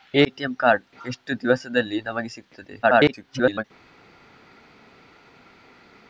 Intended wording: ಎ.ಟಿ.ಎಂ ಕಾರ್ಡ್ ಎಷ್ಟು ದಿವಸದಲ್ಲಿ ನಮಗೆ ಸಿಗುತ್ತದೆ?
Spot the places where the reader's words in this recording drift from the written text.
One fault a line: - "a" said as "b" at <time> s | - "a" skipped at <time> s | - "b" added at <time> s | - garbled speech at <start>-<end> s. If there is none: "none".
- garbled speech at 2.8-3.6 s